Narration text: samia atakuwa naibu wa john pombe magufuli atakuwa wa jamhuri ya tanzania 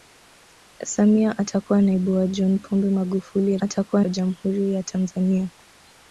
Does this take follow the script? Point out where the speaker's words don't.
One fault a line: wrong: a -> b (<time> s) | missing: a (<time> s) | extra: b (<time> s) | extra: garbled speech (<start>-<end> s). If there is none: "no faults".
no faults